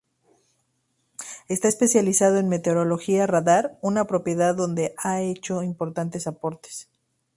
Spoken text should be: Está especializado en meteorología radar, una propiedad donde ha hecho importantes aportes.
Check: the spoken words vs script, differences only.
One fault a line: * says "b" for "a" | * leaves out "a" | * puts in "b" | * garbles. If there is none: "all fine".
all fine